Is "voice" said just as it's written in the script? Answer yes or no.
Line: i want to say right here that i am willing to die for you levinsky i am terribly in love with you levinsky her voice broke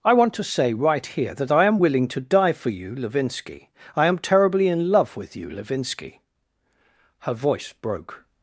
yes